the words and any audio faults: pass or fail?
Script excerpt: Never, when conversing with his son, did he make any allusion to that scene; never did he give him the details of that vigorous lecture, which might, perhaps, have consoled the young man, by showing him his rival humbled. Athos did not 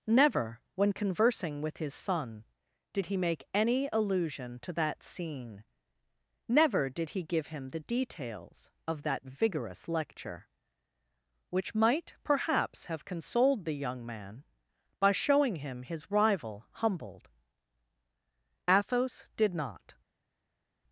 pass